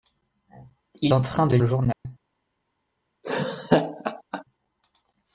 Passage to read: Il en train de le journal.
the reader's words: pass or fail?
pass